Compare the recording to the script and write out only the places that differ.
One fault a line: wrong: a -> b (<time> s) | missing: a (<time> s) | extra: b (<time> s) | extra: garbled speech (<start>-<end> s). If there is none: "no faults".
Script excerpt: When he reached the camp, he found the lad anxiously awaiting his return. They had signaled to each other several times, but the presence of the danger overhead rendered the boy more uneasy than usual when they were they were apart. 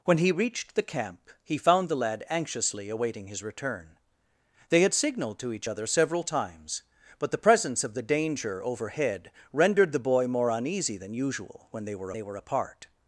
no faults